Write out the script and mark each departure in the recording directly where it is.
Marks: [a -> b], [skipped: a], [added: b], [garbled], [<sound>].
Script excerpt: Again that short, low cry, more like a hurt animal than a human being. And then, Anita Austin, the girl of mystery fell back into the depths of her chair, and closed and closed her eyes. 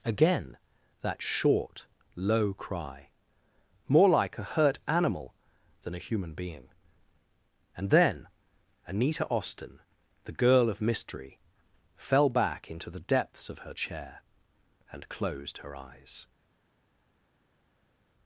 Again that short, low cry, more like a hurt animal than a human being. And then, Anita Austin, the girl of mystery fell back into the depths of her chair, and closed [skipped: and closed] her eyes.